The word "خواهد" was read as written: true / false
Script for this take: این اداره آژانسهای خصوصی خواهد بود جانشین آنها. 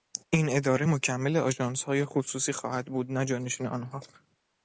true